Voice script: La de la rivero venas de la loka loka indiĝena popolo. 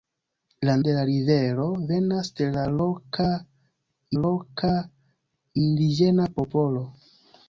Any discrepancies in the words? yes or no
no